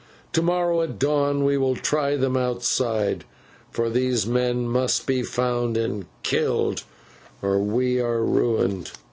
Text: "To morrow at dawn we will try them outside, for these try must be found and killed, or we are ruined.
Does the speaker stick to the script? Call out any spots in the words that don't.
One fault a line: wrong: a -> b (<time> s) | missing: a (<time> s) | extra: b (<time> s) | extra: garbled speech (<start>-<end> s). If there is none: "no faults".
wrong: try -> men (4.3 s)